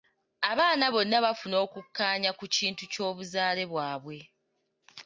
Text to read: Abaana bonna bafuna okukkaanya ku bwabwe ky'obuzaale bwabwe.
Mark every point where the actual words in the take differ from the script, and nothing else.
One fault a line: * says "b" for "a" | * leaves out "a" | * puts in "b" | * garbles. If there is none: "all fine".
* says "kintu" for "bwabwe"